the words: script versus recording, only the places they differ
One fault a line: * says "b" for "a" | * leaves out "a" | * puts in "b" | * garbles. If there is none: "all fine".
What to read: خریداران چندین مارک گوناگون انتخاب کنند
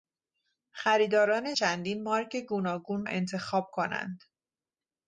all fine